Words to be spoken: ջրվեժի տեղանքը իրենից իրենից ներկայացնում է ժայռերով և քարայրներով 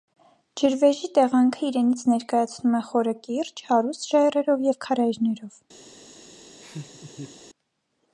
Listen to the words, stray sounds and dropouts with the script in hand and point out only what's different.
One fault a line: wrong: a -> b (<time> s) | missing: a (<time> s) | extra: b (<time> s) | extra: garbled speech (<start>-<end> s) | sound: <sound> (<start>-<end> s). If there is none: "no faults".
missing: իրենից (2.0 s)
extra: խորը կիրճ հարուստ (2.9 s)
sound: laugh (6.6-7.4 s)